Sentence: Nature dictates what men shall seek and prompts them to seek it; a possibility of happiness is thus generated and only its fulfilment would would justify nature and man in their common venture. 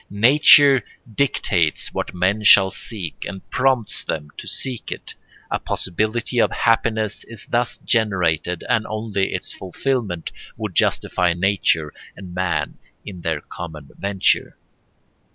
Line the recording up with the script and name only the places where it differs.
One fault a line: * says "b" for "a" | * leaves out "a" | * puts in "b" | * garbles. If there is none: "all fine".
* leaves out "would"